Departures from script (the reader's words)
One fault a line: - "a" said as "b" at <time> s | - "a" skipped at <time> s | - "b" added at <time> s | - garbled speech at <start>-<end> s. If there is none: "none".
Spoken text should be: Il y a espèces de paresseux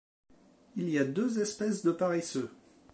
- "deux" added at 1.0 s